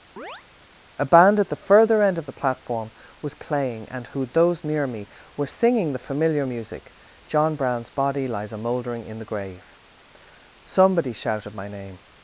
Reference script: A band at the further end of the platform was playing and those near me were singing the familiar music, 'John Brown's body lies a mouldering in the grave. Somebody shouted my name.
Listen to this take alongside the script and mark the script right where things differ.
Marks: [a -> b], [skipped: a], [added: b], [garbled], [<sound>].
[chirp] A band at the further end of the platform was playing and [added: who] those near me were singing the familiar music, 'John Brown's body lies a mouldering in the grave. Somebody shouted my name.